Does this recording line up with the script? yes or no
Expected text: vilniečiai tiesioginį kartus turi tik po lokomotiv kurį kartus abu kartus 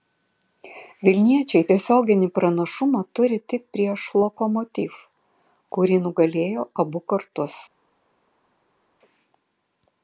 no